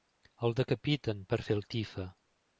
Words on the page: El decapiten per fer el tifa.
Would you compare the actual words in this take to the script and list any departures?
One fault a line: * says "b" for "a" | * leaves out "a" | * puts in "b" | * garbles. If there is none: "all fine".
all fine